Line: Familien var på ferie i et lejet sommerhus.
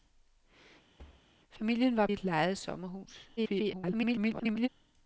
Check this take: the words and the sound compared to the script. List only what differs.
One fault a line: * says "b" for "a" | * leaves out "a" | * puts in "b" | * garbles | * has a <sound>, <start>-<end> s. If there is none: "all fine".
* has a thud, 1.0-1.3 s
* leaves out "på ferie"
* garbles